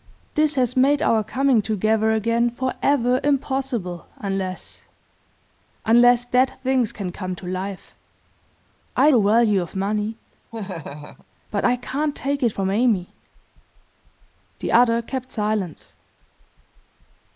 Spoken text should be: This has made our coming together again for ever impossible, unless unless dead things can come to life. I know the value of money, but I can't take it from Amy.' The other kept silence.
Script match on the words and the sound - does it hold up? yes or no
no